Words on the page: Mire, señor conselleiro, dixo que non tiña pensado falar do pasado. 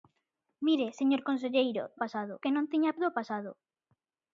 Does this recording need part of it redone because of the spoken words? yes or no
yes